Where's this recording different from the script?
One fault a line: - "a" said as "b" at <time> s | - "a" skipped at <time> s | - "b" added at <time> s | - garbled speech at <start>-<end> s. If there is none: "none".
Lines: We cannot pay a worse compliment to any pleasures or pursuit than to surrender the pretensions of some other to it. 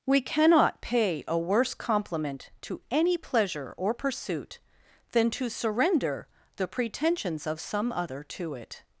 - "pleasures" said as "pleasure" at 3.2 s